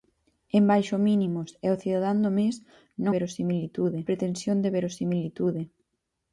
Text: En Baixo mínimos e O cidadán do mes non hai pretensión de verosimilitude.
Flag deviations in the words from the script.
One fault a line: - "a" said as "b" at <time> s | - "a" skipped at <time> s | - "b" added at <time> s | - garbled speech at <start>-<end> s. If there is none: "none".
- "hai" said as "verosimilitude" at 3.2 s